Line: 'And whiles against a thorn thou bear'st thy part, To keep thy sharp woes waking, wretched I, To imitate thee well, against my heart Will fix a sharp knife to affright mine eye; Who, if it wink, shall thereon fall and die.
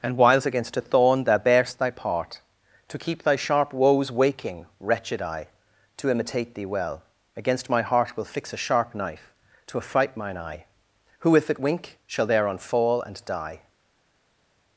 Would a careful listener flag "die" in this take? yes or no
no